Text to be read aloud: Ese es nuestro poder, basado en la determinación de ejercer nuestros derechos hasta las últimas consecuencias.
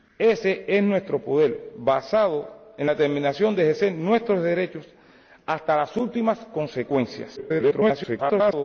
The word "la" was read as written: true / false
false